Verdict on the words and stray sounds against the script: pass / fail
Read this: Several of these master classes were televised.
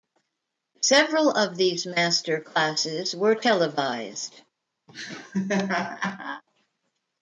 fail